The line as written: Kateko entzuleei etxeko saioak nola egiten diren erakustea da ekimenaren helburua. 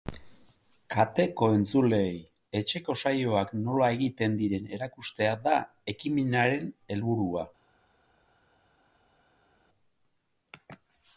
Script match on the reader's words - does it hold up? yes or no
yes